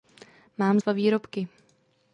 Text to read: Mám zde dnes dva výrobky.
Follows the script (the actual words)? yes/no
no